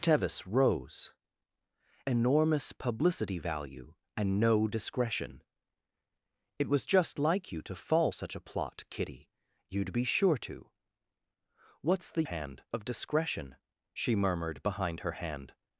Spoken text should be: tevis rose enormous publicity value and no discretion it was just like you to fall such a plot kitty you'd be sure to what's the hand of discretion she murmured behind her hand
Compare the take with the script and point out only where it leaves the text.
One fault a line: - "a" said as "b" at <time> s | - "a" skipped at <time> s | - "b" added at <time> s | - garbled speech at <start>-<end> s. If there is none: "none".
none